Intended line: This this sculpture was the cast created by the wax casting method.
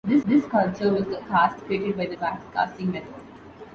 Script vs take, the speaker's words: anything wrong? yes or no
no